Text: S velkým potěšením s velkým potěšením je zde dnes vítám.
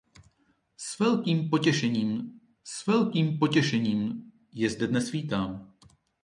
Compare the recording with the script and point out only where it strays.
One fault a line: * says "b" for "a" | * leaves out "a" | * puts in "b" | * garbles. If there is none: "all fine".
all fine